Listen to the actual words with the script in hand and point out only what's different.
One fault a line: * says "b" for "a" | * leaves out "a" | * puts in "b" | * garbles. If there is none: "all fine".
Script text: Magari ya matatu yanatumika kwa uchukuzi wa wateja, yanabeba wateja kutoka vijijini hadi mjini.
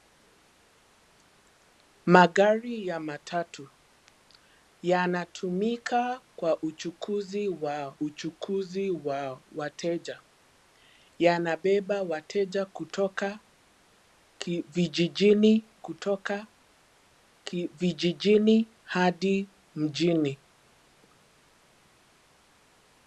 * puts in "uchukuzi wa"
* puts in "kutoka vijijini"